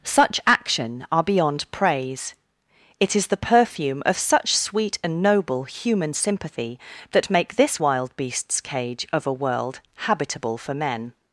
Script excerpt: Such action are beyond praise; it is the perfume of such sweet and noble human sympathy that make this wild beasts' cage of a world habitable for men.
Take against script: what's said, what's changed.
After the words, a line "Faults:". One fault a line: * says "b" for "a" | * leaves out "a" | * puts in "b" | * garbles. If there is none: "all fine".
Such action are beyond praise; it is the perfume of such sweet and noble human sympathy that make this wild beasts' cage of a world habitable for men.
Faults:
all fine